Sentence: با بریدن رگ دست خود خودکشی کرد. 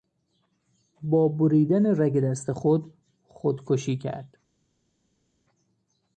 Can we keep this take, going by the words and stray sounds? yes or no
yes